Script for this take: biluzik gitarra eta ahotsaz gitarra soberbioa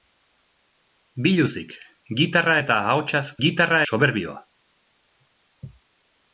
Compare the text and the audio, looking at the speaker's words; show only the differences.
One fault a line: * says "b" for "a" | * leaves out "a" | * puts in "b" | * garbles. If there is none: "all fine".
all fine